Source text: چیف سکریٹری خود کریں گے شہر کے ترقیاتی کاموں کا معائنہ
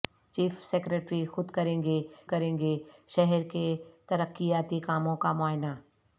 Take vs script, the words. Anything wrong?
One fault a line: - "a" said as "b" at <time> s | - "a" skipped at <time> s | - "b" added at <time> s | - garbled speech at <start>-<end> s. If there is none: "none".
- "کریں گے" added at 2.3 s